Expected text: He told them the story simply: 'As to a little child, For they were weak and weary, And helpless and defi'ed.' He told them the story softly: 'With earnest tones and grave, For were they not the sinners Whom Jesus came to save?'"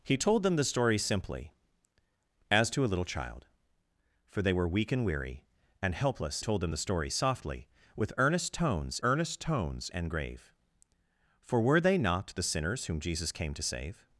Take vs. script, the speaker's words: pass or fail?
fail